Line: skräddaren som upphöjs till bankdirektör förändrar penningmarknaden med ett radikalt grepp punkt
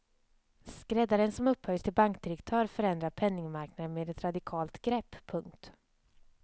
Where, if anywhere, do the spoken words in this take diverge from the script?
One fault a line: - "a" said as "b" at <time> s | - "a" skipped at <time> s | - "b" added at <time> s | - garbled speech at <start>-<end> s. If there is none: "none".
none